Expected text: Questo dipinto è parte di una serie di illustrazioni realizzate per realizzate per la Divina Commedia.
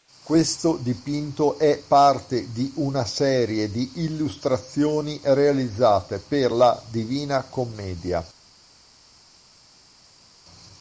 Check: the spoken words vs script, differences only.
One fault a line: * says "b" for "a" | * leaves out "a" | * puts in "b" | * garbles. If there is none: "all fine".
* leaves out "realizzate per"